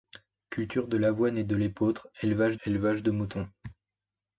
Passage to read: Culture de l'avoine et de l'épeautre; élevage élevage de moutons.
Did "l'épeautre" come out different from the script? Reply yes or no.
no